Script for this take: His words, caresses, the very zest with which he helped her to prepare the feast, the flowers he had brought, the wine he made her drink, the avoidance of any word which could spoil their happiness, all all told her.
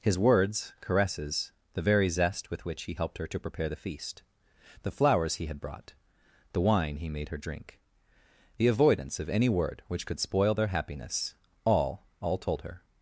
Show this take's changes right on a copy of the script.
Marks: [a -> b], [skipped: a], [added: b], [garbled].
His words, caresses, the very zest with which he helped her to prepare the feast, the flowers he had brought, the wine he made her drink, the avoidance of any word which could spoil their happiness, all all told her.